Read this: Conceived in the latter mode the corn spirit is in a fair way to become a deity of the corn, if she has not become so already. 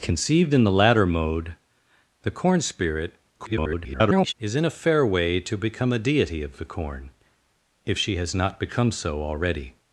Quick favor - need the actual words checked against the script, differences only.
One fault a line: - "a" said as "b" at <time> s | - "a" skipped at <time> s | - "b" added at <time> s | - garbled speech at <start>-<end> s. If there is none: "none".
- garbled speech at 3.4-4.3 s